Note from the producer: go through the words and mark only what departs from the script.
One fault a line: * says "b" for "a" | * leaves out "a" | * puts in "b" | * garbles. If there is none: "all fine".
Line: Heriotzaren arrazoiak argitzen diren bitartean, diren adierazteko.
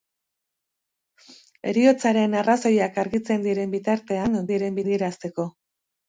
all fine